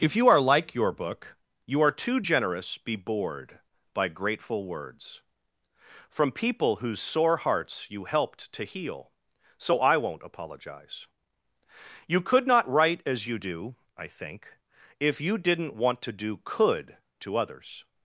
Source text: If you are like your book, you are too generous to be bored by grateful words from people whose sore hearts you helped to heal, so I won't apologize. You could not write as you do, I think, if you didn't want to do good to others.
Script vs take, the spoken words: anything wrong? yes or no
yes